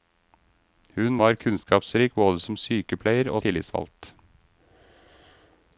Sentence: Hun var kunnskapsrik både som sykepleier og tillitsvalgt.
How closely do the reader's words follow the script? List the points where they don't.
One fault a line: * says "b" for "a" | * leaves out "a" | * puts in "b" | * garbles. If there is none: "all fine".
all fine